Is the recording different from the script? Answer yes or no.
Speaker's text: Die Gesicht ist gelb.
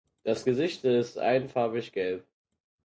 yes